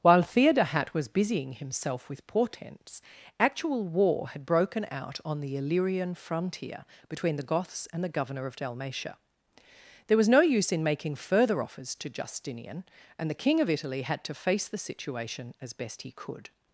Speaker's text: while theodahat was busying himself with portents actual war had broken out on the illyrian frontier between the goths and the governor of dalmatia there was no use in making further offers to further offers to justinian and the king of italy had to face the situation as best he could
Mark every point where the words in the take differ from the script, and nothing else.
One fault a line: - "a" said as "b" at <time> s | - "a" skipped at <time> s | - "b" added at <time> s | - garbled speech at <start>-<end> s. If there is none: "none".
- "further offers to" skipped at 12.1 s